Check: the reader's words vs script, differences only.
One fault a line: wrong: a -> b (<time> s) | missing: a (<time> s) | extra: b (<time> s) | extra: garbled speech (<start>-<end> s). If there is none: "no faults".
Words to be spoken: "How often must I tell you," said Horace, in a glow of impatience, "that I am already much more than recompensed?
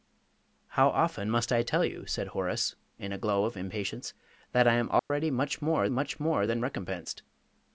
extra: much more (5.9 s)